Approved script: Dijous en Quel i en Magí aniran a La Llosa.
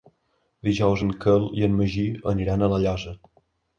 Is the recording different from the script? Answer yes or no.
no